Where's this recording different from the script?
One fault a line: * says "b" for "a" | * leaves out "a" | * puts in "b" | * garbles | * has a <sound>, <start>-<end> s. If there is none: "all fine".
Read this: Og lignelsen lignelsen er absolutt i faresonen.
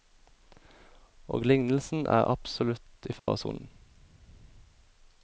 * leaves out "lignelsen"
* has a dropout, 3.2-3.3 s